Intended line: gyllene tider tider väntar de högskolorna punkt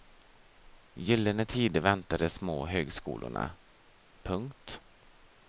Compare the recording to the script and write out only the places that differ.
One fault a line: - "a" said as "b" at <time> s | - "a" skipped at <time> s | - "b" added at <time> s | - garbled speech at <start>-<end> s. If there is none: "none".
- "tider" skipped at 1.8 s
- "små" added at 2.3 s